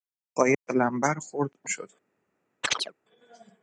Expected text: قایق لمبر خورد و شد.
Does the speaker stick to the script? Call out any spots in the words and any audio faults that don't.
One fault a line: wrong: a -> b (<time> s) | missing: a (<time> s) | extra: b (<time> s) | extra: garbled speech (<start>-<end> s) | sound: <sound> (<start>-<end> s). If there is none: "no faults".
sound: dropout (0.5-0.7 s)
sound: chirp (2.6-2.9 s)